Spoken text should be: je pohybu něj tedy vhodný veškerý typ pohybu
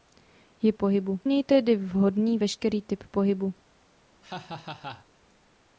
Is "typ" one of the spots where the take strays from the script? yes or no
no